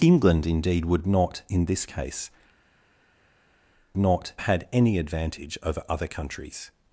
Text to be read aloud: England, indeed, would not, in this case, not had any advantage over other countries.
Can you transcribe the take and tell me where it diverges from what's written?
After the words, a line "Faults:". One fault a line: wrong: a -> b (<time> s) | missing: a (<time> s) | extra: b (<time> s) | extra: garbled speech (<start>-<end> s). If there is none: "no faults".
England, indeed, would not, in this case, not had any advantage over other countries.
Faults:
no faults